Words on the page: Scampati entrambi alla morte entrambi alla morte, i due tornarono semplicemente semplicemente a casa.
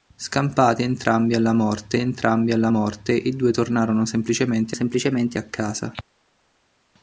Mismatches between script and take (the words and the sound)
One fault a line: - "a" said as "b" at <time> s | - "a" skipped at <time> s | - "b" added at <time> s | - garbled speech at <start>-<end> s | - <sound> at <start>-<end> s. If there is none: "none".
none